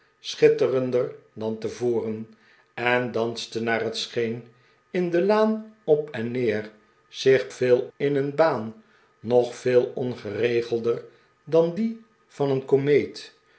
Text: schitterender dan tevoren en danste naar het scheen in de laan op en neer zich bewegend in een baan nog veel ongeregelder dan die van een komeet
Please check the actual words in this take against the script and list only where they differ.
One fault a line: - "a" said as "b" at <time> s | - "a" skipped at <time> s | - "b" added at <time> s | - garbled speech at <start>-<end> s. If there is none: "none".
- "bewegend" said as "veel" at 7.5 s